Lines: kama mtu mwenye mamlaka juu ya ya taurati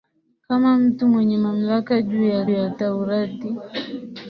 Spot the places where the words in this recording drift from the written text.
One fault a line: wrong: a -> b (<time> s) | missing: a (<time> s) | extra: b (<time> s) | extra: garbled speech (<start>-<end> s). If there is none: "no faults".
no faults